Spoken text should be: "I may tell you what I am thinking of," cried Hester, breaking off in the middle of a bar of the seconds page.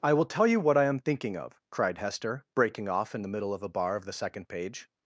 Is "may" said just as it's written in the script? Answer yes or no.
no